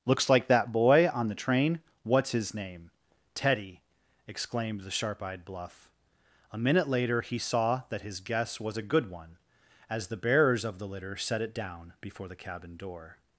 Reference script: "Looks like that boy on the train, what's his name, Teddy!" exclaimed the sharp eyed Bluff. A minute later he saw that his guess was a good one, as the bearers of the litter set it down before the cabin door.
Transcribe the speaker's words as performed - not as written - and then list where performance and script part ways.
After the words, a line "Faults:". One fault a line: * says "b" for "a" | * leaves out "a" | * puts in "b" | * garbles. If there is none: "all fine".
"Looks like that boy on the train, what's his name, Teddy!" exclaimed the sharp eyed Bluff. A minute later he saw that his guess was a good one, as the bearers of the litter set it down before the cabin door.
Faults:
all fine